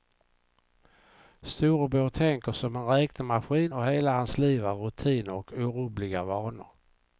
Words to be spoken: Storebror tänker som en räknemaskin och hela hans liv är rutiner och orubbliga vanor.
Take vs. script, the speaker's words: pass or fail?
pass